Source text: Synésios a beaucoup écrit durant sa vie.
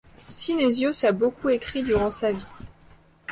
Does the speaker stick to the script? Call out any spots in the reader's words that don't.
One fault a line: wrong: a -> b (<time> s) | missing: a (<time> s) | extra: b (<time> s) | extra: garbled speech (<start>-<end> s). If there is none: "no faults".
no faults